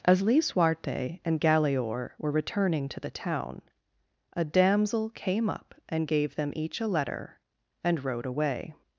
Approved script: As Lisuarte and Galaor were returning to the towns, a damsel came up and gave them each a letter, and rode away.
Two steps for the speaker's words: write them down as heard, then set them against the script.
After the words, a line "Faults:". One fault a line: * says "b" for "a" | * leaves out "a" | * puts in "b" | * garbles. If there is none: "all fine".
As Lisuarte and Galaor were returning to the town, a damsel came up and gave them each a letter, and rode away.
Faults:
* says "town" for "towns"